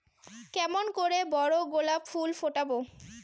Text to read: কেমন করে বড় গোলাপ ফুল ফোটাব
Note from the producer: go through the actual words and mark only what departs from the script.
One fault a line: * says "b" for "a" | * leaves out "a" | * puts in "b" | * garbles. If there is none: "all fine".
all fine